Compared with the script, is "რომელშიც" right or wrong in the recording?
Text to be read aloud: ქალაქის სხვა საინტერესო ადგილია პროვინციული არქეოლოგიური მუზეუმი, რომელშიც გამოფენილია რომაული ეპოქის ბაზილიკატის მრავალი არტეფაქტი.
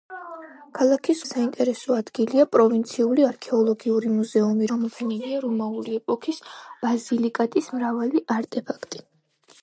wrong